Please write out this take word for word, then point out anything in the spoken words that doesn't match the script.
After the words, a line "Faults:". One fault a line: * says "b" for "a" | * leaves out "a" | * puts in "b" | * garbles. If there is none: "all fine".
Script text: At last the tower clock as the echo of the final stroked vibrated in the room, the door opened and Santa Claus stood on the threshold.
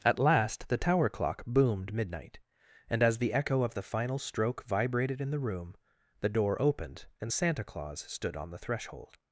At last the tower clock boomed midnight, and as the echo of the final stroke vibrated in the room, the door opened and Santa Claus stood on the threshold.
Faults:
* puts in "boomed midnight and"
* says "stroke" for "stroked"